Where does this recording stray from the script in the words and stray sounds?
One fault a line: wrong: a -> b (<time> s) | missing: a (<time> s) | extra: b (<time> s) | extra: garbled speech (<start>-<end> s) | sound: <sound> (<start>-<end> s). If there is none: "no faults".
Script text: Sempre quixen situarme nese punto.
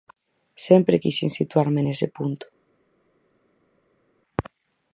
no faults